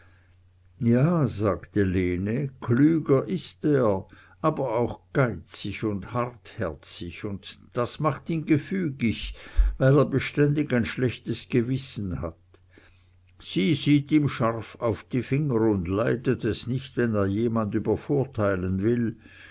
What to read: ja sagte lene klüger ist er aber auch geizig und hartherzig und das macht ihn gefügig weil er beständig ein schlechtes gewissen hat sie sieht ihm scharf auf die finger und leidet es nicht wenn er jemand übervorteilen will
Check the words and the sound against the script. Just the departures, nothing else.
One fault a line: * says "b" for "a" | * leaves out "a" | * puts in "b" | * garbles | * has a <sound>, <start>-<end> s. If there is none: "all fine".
all fine